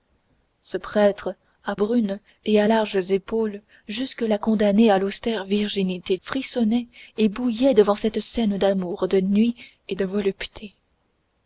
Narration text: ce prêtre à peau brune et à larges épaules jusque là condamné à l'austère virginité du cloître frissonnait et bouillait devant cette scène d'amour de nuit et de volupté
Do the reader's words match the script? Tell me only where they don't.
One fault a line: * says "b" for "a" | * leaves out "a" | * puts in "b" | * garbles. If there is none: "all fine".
* leaves out "peau"
* leaves out "du cloître"